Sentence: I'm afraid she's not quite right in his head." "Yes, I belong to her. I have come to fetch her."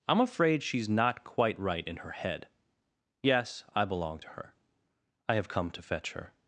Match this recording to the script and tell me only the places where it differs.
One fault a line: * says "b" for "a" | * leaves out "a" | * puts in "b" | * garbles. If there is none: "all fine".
* says "her" for "his"